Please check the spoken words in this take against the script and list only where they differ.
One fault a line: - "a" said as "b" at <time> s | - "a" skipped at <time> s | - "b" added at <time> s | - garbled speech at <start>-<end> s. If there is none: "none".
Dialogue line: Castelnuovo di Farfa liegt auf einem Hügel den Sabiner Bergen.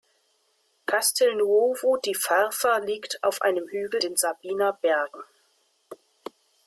none